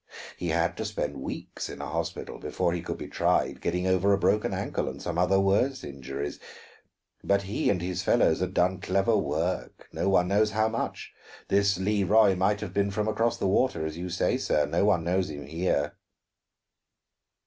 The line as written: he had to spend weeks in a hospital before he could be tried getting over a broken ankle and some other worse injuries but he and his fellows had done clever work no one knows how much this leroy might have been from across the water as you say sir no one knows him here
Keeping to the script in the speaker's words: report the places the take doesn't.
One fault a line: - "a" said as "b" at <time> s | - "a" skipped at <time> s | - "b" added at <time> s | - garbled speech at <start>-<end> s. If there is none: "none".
none